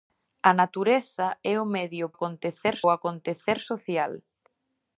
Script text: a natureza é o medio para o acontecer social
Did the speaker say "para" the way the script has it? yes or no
no